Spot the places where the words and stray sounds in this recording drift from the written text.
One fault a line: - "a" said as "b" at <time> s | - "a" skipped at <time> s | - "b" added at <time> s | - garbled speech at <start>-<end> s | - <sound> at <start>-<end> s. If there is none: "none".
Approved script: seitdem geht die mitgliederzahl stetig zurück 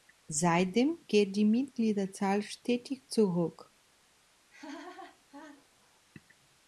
- laugh at 4.5-6.0 s